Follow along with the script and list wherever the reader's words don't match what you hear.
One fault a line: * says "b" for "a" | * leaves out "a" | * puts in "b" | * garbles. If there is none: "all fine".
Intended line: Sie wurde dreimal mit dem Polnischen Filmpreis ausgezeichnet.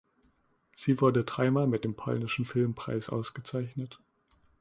all fine